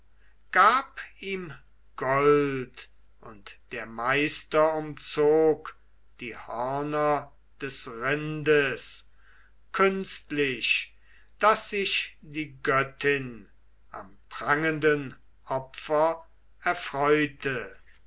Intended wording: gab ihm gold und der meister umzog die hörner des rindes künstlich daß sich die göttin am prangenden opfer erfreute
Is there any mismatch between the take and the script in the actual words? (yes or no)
no